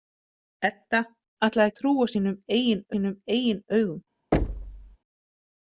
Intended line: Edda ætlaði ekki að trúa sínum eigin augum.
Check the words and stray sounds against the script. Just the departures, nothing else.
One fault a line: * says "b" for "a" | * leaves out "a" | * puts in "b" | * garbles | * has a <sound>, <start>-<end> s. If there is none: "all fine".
* leaves out "ekki"
* puts in "sínum eigin"
* has a thud, 4.3-5.0 s